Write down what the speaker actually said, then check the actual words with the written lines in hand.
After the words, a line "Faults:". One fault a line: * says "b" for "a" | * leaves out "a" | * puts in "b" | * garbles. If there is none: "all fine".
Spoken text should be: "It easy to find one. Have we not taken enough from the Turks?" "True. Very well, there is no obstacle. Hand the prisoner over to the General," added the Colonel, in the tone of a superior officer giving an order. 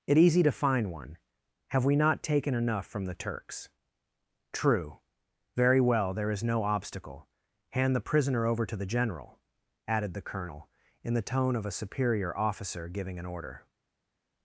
"It easy to find one. Have we not taken enough from the Turks?" "True. Very well, there is no obstacle. Hand the prisoner over to the General," added the Colonel, in the tone of a superior officer giving an order.
Faults:
all fine